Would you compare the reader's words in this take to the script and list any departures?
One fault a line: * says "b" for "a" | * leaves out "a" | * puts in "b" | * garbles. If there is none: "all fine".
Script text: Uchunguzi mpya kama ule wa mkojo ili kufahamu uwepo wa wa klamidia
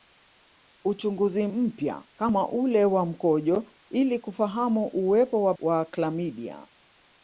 all fine